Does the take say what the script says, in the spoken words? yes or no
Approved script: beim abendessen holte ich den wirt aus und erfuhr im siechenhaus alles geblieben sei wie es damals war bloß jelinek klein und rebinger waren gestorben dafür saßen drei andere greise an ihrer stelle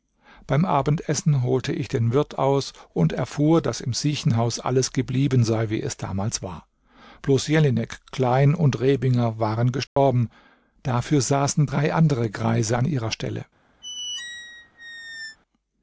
no